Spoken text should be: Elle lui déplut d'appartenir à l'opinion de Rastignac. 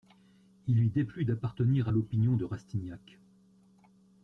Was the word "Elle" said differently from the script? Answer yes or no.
yes